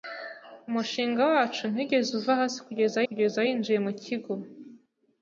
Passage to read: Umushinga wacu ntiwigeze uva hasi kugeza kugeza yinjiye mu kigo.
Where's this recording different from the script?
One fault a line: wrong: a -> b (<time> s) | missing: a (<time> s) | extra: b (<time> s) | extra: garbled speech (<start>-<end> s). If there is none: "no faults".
no faults